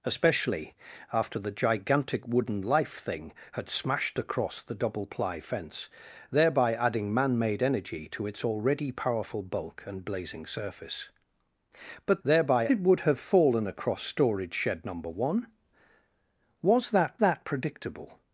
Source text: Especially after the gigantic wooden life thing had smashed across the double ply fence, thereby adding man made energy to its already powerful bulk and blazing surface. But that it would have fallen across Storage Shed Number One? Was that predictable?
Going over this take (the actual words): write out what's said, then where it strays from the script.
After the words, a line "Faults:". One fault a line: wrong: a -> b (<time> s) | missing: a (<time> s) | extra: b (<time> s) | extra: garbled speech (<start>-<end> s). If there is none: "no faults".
Especially after the gigantic wooden life thing had smashed across the double ply fence, thereby adding man made energy to its already powerful bulk and blazing surface. But thereby it would have fallen across Storage Shed Number One? Was that that predictable?
Faults:
wrong: that -> thereby (12.2 s)
extra: that (17.2 s)